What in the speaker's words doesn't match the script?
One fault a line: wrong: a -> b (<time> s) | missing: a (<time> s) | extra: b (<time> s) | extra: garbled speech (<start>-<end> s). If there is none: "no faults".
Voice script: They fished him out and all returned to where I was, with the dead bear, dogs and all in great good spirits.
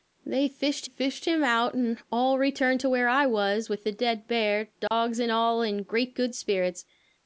extra: fished (0.8 s)